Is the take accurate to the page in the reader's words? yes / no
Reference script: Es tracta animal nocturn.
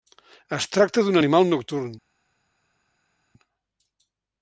no